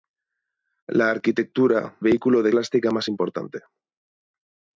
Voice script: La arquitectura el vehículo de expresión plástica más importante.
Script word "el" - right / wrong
wrong